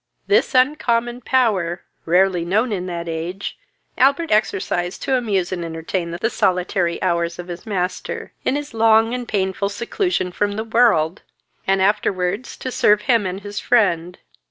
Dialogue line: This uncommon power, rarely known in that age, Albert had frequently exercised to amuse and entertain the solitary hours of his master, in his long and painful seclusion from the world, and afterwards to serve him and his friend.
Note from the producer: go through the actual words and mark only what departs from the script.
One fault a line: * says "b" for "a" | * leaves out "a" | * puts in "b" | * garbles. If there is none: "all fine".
* leaves out "had frequently"